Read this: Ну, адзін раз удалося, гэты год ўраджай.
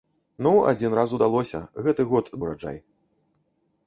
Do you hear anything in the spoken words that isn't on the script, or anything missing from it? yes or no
no